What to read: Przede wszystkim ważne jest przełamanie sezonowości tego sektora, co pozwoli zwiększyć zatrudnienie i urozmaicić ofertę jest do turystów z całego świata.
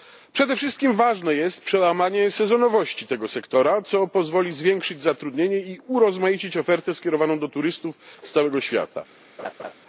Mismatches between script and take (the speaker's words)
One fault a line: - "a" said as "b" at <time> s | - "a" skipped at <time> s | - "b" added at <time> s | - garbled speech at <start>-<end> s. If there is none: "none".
- "jest" said as "skierowaną" at 6.9 s